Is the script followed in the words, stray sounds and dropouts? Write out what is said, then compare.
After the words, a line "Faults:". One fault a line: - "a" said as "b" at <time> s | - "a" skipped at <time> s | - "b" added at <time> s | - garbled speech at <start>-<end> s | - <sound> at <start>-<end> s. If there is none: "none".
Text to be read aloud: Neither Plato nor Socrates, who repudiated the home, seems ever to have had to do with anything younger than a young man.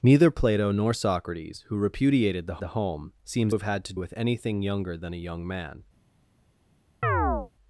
Neither Plato nor Socrates, who repudiated the the home, seems have had to with anything younger than a young man.
Faults:
- "the" added at 2.6 s
- "ever to" skipped at 3.5 s
- "do" skipped at 3.9 s
- chirp at 7.0-7.5 s